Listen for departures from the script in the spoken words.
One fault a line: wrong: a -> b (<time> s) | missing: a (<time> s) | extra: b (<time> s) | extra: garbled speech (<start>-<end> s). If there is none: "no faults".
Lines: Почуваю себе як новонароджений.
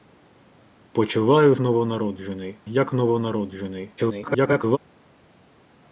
wrong: себе -> новонароджений (1.6 s)
extra: garbled speech (4.0-4.8 s)